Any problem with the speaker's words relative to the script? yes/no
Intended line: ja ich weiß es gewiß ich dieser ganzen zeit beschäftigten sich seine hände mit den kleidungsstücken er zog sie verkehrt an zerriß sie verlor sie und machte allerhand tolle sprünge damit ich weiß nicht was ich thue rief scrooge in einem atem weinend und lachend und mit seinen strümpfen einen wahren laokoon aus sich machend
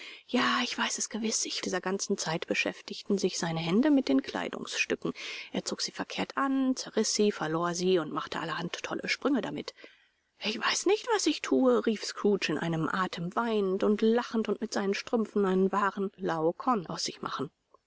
no